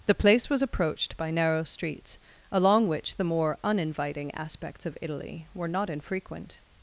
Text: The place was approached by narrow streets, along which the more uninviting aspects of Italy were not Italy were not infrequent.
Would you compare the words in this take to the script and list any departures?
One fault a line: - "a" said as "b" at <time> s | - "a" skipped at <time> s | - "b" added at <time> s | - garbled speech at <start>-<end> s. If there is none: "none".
- "Italy were not" skipped at 5.9 s